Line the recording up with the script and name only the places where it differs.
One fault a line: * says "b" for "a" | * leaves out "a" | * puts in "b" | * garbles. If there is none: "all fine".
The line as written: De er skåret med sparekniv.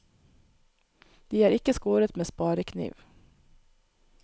* puts in "ikke"